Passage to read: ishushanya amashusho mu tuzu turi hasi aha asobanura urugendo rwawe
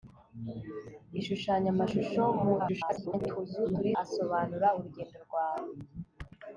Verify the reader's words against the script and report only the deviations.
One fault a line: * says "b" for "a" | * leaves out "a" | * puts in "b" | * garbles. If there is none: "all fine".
* garbles
* leaves out "hasi aha"